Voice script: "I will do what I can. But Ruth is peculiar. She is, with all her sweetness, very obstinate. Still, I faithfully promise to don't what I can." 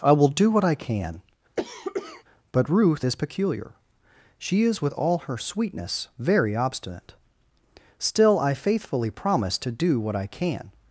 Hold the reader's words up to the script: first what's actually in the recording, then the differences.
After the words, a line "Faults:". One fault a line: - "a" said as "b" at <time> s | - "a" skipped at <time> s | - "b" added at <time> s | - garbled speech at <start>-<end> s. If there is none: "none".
"I will do what I can. But Ruth is peculiar. She is, with all her sweetness, very obstinate. Still, I faithfully promise to do what I can."
Faults:
- "don't" said as "do" at 9.7 s